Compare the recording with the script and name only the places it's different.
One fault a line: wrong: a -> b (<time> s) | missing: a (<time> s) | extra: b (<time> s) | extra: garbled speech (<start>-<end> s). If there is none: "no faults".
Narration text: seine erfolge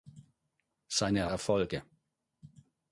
no faults